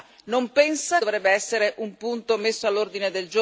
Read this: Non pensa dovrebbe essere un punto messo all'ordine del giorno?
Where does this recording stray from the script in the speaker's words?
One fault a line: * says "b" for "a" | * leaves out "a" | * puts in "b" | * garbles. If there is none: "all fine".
all fine